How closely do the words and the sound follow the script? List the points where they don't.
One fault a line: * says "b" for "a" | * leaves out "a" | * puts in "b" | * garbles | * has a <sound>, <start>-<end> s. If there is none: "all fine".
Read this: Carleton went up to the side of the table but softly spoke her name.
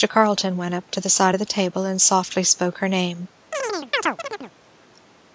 * says "and" for "but"
* has a chirp, 3.5-4.5 s